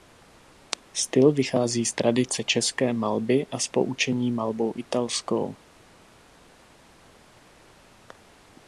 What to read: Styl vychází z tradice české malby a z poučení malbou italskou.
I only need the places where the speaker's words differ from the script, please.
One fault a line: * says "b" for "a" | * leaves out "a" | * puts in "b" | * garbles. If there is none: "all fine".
all fine